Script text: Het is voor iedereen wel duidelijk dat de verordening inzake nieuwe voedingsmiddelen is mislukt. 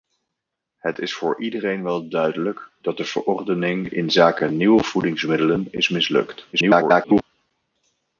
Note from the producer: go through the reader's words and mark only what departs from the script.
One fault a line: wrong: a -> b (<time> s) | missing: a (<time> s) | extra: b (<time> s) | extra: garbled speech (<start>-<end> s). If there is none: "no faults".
extra: garbled speech (6.5-7.2 s)